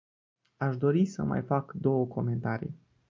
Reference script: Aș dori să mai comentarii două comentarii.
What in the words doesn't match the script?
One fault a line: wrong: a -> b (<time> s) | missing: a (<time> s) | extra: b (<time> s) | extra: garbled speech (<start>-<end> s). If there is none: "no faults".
wrong: comentarii -> fac (1.4 s)